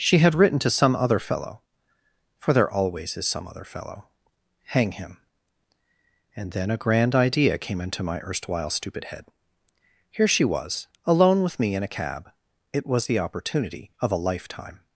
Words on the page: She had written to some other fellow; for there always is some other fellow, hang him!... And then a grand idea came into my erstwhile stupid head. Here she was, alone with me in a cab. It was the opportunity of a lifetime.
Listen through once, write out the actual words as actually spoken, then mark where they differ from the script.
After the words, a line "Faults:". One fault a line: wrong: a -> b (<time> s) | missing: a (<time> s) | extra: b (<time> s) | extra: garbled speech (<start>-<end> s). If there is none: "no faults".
She had written to some other fellow; for there always is some other fellow, hang him!... And then a grand idea came into my erstwhile stupid head. Here she was, alone with me in a cab. It was the opportunity of a lifetime.
Faults:
no faults